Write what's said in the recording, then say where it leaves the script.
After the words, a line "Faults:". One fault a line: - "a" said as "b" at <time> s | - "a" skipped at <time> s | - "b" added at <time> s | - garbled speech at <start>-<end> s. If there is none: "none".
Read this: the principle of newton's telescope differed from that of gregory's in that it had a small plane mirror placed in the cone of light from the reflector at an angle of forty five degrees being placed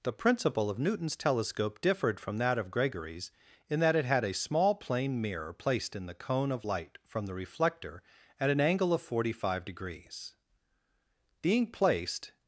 the principle of newton's telescope differed from that of gregory's in that it had a small plane mirror placed in the cone of light from the reflector at an angle of forty five degrees being placed
Faults:
none